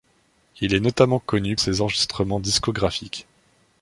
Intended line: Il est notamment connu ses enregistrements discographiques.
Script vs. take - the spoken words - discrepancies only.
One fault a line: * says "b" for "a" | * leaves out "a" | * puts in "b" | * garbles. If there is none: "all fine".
all fine